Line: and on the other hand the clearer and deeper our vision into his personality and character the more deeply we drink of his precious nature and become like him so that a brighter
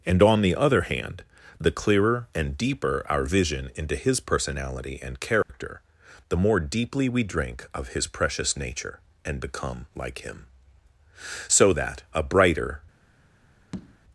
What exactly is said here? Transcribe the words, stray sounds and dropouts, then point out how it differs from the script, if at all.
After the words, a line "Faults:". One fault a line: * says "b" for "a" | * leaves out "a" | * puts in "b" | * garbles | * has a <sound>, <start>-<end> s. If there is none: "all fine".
and on the other hand the clearer and deeper our vision into his personality and character the more deeply we drink of his precious nature and become like him so that a brighter
Faults:
* has a dropout, 5.4-5.5 s
* has a tap, 13.7-14.0 s